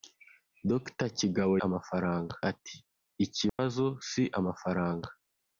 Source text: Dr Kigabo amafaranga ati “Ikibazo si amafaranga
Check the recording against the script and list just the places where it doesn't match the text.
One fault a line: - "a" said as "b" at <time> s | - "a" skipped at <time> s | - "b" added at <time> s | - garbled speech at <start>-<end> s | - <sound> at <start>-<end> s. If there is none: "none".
- dropout at 3.5-3.6 s